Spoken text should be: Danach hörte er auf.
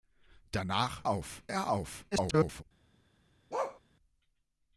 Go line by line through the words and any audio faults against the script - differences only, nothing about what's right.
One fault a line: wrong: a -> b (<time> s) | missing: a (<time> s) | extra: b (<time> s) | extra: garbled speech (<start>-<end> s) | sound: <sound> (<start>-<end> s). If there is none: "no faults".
wrong: hörte -> auf (1.1 s)
extra: garbled speech (2.1-2.6 s)
sound: bark (3.5-3.8 s)